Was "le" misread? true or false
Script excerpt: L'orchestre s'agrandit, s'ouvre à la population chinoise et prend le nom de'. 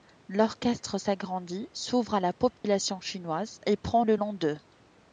false